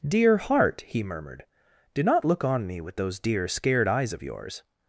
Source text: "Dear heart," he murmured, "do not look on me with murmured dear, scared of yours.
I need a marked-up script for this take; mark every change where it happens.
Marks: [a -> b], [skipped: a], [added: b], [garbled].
"Dear heart," he murmured, "do not look on me with [murmured -> those] dear, scared [added: eyes] of yours.